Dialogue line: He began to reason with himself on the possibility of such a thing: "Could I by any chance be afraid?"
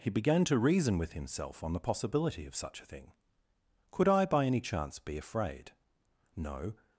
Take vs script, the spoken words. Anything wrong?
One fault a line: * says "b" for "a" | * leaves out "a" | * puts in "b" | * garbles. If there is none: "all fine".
* puts in "No"